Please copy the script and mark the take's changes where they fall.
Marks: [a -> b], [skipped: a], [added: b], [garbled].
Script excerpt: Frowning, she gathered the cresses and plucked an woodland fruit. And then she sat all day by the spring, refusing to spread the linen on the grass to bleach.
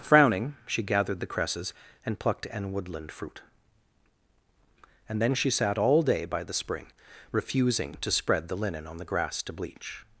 Frowning, she gathered the cresses and plucked an woodland fruit. And then she sat all day by the spring, refusing to spread the linen on the grass to bleach.